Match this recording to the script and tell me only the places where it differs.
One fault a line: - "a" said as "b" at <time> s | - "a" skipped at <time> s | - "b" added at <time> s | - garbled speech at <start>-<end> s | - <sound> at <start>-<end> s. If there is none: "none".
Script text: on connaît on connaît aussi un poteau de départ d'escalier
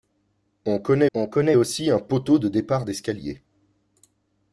none